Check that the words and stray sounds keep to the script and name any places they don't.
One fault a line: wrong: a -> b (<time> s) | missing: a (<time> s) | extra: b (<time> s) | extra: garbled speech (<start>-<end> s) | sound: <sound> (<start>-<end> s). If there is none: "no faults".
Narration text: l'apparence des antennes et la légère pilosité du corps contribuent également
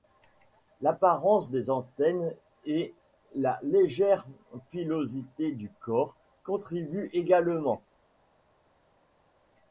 no faults